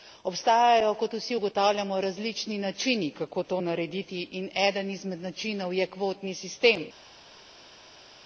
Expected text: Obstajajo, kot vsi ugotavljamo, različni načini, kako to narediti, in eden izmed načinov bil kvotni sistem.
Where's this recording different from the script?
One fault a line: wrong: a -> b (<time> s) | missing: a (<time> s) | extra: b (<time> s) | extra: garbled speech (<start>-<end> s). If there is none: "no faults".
wrong: bil -> je (5.7 s)